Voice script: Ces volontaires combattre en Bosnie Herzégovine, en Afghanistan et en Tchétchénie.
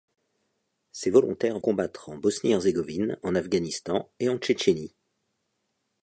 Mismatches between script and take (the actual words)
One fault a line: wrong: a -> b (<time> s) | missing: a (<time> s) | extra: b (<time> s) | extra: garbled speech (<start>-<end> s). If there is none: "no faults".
no faults